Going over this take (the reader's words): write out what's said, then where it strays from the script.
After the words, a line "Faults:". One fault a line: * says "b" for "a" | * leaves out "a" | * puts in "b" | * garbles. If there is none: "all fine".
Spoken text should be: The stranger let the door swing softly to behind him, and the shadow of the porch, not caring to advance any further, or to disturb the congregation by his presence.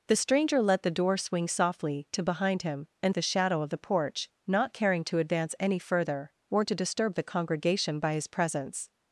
The stranger let the door swing softly to behind him, and the shadow of the porch, not caring to advance any further, or to disturb the congregation by his presence.
Faults:
all fine